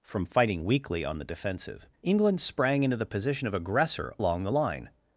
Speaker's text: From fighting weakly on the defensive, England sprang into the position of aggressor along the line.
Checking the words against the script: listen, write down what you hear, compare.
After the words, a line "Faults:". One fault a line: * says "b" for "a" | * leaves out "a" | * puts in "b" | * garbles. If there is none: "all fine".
From fighting weakly on the defensive, England sprang into the position of aggressor along the line.
Faults:
all fine